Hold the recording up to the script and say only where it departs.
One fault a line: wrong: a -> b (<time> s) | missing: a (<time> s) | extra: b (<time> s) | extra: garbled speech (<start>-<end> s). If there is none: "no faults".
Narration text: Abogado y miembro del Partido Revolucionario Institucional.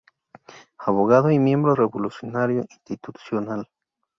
missing: del Partido (1.8 s)